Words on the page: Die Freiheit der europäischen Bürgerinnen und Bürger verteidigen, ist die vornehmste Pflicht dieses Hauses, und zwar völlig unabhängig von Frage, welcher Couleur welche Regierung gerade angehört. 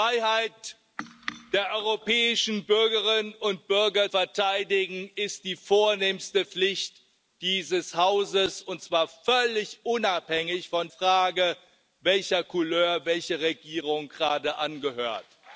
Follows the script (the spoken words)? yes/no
yes